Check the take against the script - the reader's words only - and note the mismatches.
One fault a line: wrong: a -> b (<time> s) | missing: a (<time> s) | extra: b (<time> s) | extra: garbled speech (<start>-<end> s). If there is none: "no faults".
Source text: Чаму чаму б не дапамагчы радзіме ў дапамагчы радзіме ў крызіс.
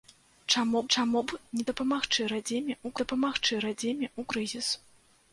no faults